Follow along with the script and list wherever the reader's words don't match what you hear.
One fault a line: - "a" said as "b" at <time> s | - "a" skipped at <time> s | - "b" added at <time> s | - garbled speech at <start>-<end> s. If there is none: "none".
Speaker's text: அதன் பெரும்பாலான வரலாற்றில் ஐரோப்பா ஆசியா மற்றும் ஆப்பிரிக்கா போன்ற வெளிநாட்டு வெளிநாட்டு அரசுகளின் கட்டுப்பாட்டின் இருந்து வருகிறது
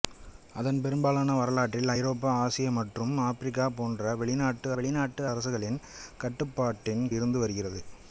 none